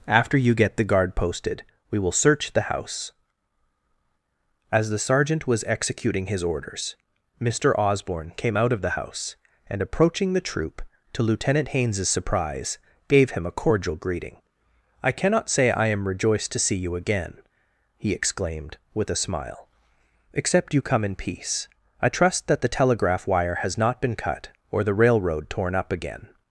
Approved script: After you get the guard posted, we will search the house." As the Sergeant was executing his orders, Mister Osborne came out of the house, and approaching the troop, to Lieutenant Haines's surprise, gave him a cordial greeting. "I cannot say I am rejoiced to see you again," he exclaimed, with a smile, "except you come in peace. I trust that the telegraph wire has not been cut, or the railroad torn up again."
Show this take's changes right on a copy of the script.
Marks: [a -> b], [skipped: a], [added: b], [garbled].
After you get the guard posted, we will search the house." As the Sergeant was executing his orders, Mister Osborne came out of the house, and approaching the troop, to Lieutenant Haines's surprise, gave him a cordial greeting. "I cannot say I am rejoiced to see you again," he exclaimed, with a smile, "except you come in peace. I trust that the telegraph wire has not been cut, or the railroad torn up again."